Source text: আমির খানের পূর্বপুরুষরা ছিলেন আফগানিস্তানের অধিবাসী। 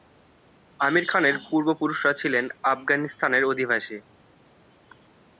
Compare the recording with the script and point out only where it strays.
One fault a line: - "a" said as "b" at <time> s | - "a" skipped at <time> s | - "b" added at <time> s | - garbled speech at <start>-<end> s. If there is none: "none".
none